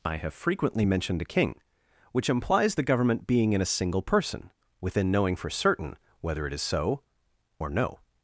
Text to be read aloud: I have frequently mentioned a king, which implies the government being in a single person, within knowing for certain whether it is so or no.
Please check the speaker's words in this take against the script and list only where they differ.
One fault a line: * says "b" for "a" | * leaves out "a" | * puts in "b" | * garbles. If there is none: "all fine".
all fine